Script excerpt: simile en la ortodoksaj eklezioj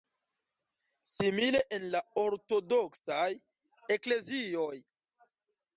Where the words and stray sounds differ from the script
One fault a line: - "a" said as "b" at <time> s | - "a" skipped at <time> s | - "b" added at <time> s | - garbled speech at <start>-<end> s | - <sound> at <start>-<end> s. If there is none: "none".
none